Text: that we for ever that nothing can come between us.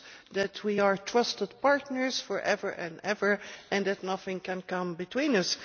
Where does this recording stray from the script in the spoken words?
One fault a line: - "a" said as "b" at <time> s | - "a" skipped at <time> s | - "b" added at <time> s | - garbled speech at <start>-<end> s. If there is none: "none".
- "are trusted partners" added at 0.8 s
- "and ever and" added at 2.7 s